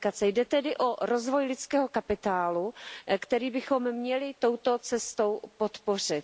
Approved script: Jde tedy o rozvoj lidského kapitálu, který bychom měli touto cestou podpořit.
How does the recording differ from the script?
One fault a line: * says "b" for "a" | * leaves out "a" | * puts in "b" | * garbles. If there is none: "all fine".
all fine